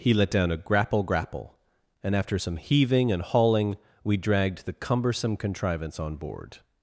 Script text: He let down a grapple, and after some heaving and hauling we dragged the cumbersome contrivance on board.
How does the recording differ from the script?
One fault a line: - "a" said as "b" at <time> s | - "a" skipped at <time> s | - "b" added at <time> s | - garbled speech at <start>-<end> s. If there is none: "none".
- "grapple" added at 1.0 s